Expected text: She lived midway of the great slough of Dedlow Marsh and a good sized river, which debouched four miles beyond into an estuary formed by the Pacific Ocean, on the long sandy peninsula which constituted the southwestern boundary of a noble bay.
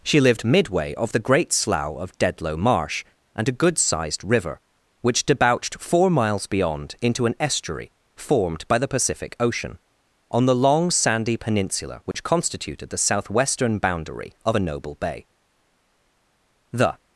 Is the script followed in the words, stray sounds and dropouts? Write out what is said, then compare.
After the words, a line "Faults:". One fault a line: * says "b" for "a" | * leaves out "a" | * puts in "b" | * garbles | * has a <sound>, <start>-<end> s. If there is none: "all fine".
She lived midway of the great slough of Dedlow Marsh and a good sized river, which debouched four miles beyond into an estuary formed by the Pacific Ocean, on the long sandy peninsula which constituted the southwestern boundary of a noble bay. The
Faults:
* has a dropout, 12.1-12.1 s
* puts in "The"